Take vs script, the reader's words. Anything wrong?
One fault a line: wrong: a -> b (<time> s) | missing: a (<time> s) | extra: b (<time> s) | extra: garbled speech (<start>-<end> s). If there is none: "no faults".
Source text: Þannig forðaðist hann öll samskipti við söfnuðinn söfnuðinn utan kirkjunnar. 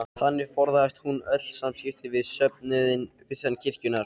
wrong: hann -> hún (1.1 s)
missing: söfnuðinn (3.1 s)